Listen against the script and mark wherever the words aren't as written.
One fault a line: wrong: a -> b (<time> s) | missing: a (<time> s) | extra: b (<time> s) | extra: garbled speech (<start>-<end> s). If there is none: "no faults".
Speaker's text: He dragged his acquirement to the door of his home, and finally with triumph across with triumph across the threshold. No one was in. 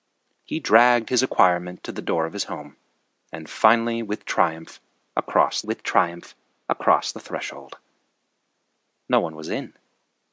no faults